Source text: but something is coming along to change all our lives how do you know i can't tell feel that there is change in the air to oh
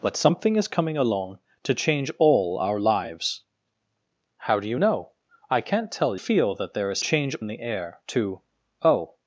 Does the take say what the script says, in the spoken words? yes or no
yes